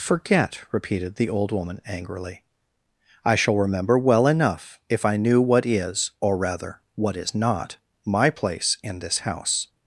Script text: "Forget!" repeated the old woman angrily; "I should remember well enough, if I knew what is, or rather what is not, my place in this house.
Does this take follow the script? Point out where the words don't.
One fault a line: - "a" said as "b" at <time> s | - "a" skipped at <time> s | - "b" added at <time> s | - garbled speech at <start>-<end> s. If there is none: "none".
- "should" said as "shall" at 3.4 s